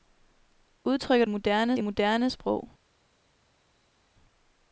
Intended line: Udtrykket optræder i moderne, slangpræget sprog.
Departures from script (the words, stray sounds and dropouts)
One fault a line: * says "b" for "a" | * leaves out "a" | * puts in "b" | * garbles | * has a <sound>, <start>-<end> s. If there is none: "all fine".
* says "moderne" for "optræder"
* leaves out "slangpræget"